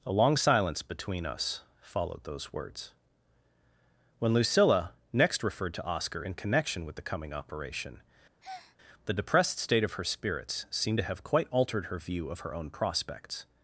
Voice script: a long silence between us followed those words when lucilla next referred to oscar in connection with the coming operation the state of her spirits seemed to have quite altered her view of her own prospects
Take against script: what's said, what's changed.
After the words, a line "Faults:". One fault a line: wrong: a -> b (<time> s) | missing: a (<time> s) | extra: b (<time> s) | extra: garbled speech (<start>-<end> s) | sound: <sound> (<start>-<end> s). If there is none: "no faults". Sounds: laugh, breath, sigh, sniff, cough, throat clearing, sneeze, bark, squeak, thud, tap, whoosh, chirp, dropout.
a long silence between us followed those words when lucilla next referred to oscar in connection with the coming operation the depressed state of her spirits seemed to have quite altered her view of her own prospects
Faults:
sound: breath (8.4-8.8 s)
extra: depressed (9.1 s)